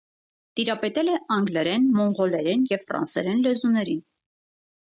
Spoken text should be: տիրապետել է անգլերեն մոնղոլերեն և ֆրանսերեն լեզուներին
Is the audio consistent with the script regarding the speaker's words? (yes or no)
yes